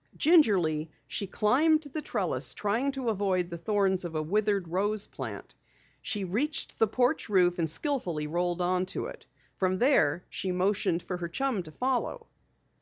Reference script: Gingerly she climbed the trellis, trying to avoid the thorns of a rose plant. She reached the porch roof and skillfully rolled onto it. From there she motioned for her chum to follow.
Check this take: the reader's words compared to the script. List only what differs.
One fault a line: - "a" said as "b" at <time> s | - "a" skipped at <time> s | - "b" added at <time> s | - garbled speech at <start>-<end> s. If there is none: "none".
- "withered" added at 4.2 s